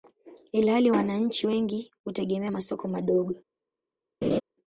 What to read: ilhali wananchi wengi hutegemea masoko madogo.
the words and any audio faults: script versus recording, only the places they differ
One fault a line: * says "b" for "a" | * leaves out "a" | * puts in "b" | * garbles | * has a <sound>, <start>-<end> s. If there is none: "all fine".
* has a laugh, 4.2-4.4 s